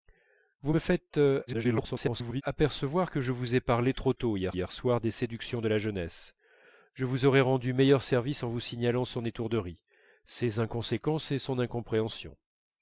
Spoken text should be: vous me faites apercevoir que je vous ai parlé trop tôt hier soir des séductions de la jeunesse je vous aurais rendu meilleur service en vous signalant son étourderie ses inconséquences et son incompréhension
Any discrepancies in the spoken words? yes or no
yes